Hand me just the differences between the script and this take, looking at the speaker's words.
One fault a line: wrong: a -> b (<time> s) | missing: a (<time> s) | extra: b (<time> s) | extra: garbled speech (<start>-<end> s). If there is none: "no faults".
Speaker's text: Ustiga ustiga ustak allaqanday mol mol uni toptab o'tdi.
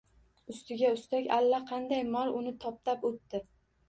missing: ustiga (0.9 s)
missing: mol (2.3 s)